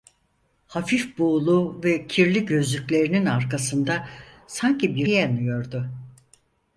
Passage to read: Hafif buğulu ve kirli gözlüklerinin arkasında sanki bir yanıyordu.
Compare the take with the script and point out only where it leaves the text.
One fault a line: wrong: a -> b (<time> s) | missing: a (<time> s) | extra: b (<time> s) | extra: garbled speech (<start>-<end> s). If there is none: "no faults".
no faults